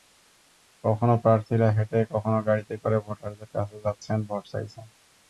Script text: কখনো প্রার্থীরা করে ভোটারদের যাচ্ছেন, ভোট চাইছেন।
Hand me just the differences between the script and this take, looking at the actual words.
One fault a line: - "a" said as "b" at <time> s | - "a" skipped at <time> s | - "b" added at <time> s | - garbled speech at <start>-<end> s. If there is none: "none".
- "হেঁটে কখনো গাড়িতে" added at 1.8 s
- "কাছে" added at 3.5 s